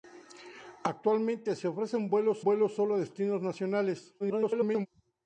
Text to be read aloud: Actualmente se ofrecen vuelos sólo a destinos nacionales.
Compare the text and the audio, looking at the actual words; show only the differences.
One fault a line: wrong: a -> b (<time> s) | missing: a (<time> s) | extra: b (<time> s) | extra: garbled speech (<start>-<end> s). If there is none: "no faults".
extra: vuelos (2.4 s)
extra: garbled speech (4.2-4.9 s)